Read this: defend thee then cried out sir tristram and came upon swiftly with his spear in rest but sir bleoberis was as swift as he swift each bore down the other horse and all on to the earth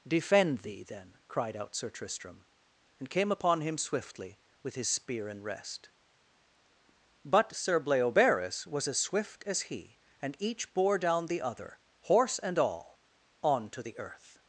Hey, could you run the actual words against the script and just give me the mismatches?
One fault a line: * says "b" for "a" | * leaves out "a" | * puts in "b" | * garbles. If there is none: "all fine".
* puts in "him"
* says "and" for "swift"